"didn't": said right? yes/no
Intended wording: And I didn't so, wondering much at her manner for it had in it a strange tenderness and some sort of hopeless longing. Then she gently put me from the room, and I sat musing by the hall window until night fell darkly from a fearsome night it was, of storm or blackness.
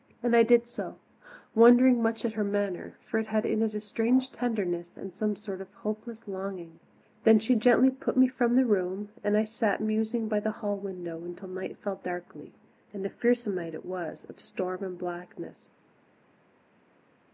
no